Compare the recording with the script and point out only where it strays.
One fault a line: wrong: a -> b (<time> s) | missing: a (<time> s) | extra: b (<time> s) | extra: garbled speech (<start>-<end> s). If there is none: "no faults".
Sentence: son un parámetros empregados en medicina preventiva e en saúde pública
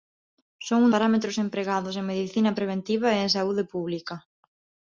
no faults